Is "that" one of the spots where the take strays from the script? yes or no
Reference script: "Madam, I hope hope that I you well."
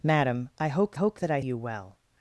no